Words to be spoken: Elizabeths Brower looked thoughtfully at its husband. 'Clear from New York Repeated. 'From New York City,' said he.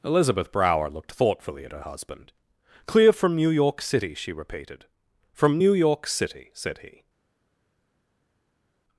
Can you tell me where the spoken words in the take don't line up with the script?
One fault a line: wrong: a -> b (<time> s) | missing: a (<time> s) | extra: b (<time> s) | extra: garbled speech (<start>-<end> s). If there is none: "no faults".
wrong: Elizabeths -> Elizabeth (0.0 s)
wrong: its -> her (1.7 s)
extra: City she (3.8 s)